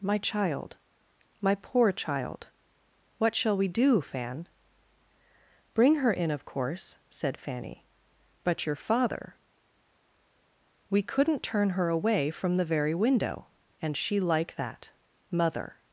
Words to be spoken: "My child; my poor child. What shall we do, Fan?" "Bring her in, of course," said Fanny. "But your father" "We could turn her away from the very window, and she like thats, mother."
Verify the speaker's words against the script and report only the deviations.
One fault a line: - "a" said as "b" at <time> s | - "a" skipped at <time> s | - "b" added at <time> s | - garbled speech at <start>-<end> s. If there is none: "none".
- "could" said as "couldn't" at 11.0 s
- "thats" said as "that" at 14.5 s